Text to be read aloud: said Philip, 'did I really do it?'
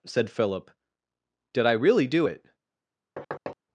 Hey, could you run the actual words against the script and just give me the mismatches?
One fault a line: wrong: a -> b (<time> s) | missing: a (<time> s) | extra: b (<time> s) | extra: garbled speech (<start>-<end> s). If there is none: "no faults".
no faults